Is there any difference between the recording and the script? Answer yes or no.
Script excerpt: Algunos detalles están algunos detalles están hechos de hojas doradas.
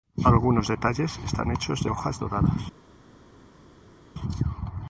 yes